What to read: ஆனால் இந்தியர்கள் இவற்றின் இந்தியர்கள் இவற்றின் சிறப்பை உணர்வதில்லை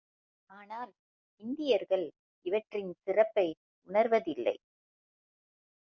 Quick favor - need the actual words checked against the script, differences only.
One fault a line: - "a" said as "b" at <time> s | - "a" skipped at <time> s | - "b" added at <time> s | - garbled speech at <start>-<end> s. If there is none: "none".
- "இந்தியர்கள் இவற்றின்" skipped at 2.9 s